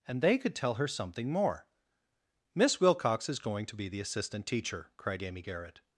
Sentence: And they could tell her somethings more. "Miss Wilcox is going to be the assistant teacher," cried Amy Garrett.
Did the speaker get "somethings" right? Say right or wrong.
wrong